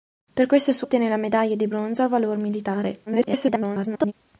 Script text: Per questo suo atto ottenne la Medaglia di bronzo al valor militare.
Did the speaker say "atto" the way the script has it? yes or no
no